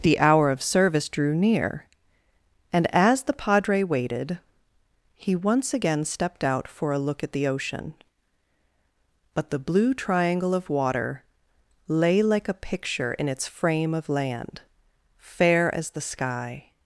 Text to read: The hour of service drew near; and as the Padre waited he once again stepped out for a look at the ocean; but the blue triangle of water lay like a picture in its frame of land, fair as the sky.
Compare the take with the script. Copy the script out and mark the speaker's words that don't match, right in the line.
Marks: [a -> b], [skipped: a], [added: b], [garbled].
The hour of service drew near; and as the Padre waited he once again stepped out for a look at the ocean; but the blue triangle of water lay like a picture in its frame of land, fair as the sky.